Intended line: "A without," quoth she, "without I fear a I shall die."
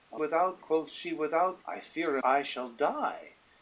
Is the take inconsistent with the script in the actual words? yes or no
no